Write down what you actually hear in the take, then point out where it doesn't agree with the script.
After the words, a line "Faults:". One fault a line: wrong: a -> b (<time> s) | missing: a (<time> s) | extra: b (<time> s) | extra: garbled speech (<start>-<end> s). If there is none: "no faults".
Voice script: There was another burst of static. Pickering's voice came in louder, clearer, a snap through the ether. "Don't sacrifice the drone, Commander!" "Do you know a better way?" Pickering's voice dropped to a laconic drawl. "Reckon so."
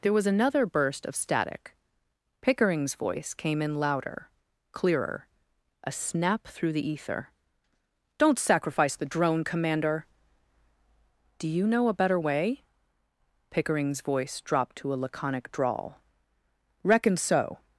There was another burst of static. Pickering's voice came in louder, clearer, a snap through the ether. "Don't sacrifice the drone, Commander!" "Do you know a better way?" Pickering's voice dropped to a laconic drawl. "Reckon so."
Faults:
no faults